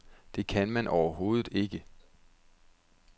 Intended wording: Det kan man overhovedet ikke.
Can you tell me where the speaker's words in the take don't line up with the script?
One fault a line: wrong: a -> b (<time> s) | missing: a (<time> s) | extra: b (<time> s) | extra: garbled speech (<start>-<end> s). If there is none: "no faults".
no faults